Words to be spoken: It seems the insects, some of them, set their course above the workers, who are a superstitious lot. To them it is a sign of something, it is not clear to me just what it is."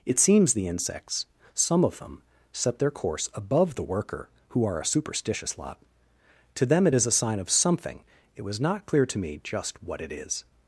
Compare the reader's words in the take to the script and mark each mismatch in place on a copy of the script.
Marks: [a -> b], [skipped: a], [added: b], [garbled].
It seems the insects, some of them, set their course above the [workers, -> worker] who are a superstitious lot. To them it is a sign of something, it [is -> was] not clear to me just what it is."